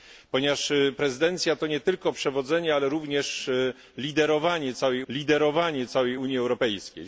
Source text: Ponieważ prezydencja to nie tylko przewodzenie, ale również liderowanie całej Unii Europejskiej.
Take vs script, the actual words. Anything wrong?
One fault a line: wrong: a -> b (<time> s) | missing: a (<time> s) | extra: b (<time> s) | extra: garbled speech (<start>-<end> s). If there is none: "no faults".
extra: liderowanie całej (5.1 s)